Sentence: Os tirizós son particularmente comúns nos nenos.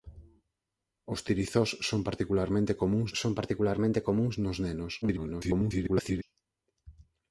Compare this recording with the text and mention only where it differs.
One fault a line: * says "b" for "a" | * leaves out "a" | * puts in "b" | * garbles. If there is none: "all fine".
* puts in "son particularmente comúns"
* garbles